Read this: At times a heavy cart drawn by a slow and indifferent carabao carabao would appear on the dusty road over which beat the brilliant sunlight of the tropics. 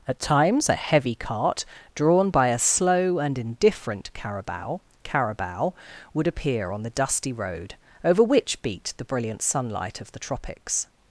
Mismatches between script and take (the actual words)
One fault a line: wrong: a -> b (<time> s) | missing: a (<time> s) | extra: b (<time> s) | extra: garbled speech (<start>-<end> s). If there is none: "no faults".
no faults